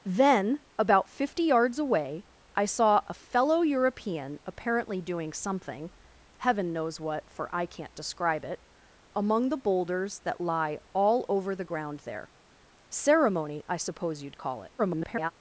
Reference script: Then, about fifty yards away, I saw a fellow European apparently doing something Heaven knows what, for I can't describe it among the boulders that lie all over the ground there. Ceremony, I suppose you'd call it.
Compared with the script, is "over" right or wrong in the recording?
right